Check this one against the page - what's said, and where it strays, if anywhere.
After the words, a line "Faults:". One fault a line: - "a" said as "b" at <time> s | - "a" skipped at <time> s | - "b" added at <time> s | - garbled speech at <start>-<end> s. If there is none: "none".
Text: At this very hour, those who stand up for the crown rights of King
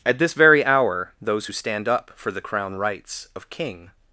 At this very hour, those who stand up for the crown rights of King
Faults:
none